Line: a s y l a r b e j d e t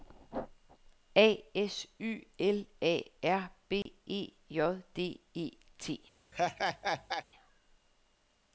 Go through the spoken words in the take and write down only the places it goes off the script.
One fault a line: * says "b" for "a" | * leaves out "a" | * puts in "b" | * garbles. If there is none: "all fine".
all fine